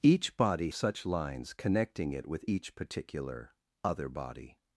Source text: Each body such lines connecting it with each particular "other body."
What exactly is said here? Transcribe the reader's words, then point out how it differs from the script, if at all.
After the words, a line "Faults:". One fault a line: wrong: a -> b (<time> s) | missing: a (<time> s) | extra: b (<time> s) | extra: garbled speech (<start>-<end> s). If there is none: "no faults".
Each body such lines connecting it with each particular "other body."
Faults:
no faults